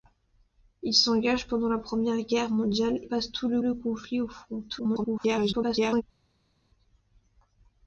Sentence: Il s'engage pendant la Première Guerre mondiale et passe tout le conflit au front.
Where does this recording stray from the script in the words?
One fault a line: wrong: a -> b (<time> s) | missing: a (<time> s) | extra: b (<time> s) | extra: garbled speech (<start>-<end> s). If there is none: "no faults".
missing: et (3.0 s)
extra: le (3.6 s)
extra: garbled speech (4.7-6.0 s)